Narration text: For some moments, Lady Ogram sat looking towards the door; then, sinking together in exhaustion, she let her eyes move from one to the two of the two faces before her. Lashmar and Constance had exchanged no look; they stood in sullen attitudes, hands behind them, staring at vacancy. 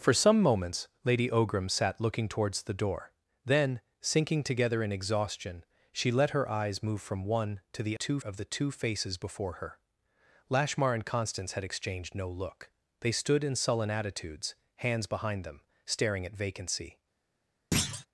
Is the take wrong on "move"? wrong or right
right